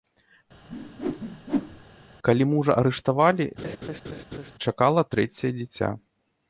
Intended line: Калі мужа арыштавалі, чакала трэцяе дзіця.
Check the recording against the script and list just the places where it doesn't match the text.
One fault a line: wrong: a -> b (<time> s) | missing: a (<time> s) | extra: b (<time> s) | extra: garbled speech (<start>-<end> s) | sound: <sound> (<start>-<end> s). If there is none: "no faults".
sound: whoosh (0.7-1.8 s)
sound: laugh (3.6-4.5 s)